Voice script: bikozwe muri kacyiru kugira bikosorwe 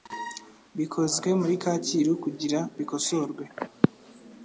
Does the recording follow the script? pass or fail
pass